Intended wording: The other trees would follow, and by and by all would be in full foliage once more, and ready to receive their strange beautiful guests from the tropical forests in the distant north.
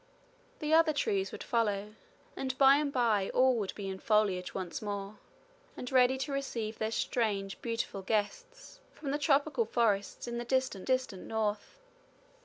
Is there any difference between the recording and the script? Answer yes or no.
yes